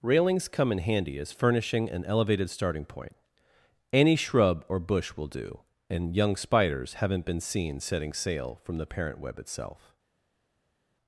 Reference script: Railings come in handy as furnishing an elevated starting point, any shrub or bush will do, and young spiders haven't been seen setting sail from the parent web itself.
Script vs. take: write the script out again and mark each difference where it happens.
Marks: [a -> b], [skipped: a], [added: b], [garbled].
Railings come in handy as furnishing an elevated starting point, any shrub or bush will do, and young spiders haven't been seen setting sail from the parent web itself.